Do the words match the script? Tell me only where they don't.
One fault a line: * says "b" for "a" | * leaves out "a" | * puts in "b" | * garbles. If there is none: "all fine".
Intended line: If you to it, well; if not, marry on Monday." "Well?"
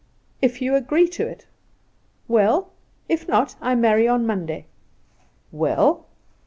* puts in "agree"
* puts in "I"